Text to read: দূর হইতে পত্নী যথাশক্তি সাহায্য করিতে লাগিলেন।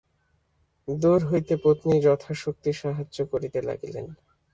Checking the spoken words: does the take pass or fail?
pass